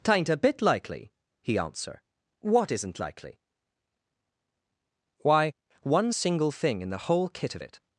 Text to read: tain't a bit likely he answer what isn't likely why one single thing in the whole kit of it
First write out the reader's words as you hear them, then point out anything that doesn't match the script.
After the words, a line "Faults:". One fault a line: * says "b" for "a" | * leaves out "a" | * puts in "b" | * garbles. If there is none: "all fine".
tain't a bit likely he answer what isn't likely why one single thing in the whole kit of it
Faults:
all fine